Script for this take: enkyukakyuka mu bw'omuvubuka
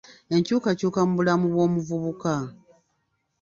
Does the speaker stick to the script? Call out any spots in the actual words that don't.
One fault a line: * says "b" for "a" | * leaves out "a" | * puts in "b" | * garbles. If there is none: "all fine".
* puts in "bulamu"